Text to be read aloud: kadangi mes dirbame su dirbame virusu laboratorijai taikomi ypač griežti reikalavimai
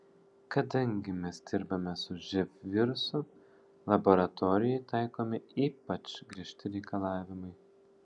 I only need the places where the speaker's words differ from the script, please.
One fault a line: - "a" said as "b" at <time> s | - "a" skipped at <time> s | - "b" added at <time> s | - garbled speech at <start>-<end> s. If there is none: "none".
- "dirbame" said as "živ" at 2.3 s